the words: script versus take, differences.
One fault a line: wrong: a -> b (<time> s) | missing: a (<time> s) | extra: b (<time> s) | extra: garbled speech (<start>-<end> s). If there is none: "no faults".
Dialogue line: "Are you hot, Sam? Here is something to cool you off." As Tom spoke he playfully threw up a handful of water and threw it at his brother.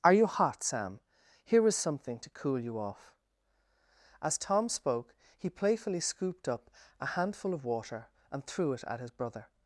wrong: threw -> scooped (6.0 s)